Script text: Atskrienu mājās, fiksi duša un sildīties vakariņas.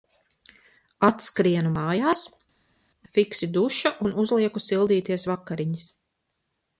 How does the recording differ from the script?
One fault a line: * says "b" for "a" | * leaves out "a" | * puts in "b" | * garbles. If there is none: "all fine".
* puts in "uzlieku"